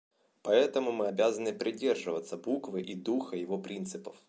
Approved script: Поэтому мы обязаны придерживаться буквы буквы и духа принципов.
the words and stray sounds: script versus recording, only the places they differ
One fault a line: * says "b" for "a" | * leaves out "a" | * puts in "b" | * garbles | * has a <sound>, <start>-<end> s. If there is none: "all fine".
* leaves out "буквы"
* puts in "его"